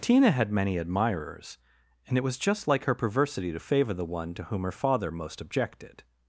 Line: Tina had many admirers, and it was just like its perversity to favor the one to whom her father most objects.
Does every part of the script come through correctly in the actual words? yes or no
no